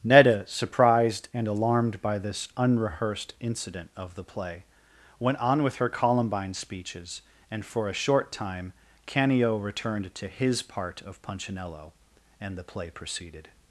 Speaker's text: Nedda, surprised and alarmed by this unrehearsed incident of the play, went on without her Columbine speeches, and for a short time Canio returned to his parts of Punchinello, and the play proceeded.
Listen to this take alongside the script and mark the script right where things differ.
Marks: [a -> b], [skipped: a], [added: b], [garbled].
Nedda, surprised and alarmed by this unrehearsed incident of the play, went on [without -> with] her Columbine speeches, and for a short time Canio returned to his [parts -> part] of Punchinello, and the play proceeded.